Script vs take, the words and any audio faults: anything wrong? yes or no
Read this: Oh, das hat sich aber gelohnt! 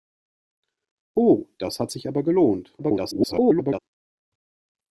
yes